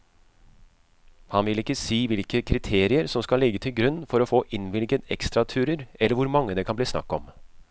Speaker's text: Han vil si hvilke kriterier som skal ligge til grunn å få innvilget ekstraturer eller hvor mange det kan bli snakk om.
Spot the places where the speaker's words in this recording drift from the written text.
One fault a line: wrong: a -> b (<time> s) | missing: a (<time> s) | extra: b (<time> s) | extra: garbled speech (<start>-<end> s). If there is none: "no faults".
extra: ikke (1.6 s)
extra: for (4.1 s)